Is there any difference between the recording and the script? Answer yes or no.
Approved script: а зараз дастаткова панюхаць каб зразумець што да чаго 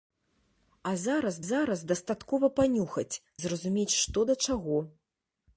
yes